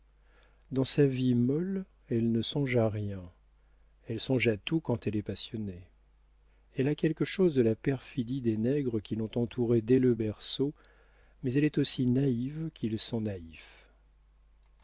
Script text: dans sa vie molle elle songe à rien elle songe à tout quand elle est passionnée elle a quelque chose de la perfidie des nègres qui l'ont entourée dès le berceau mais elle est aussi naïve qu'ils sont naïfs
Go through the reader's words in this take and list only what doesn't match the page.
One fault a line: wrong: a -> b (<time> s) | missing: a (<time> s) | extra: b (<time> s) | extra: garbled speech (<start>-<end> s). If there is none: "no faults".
extra: ne (2.3 s)